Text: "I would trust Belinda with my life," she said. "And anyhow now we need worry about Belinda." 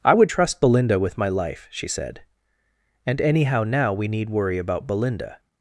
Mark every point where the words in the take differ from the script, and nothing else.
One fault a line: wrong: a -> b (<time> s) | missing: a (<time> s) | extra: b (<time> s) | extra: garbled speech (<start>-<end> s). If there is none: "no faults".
no faults